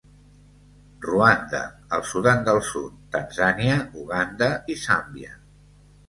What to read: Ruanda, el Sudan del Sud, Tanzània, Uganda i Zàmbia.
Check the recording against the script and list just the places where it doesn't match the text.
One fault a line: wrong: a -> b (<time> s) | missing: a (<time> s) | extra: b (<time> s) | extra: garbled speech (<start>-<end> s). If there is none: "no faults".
no faults